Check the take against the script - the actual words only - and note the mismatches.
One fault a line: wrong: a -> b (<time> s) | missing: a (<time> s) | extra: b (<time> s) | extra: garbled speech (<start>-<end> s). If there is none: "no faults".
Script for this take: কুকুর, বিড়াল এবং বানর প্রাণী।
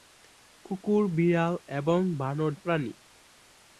no faults